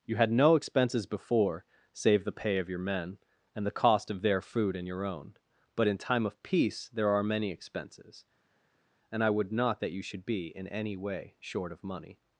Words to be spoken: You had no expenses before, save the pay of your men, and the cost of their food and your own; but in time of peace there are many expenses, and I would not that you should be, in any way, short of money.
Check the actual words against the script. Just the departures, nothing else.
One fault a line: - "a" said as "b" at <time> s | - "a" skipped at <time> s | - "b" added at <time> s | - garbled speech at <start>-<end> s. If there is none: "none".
none